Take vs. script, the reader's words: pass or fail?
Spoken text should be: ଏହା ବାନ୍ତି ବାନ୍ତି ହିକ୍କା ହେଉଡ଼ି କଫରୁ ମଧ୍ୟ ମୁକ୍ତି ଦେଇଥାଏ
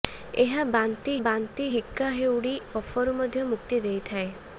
pass